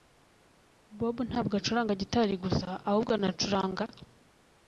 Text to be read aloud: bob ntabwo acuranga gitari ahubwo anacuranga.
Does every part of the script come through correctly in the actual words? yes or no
no